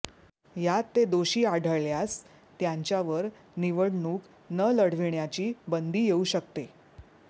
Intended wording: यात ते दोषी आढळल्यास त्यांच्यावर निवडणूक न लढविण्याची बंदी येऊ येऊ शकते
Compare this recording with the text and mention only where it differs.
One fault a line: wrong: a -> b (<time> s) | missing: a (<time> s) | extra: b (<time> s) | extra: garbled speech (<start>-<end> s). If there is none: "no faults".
missing: येऊ (6.2 s)